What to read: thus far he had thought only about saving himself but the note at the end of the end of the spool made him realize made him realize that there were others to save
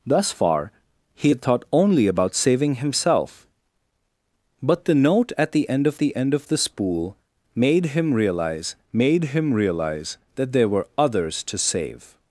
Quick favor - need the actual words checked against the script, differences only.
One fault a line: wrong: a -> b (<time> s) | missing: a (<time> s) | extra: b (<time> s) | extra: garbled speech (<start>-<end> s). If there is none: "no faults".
no faults